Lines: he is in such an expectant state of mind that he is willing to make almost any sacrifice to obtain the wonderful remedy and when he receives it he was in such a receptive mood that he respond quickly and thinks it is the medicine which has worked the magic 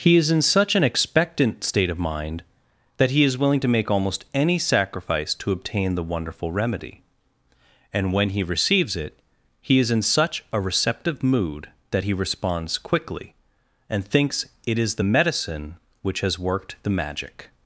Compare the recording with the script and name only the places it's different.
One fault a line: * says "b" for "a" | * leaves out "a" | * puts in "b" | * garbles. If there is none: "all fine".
* says "is" for "was"
* says "responds" for "respond"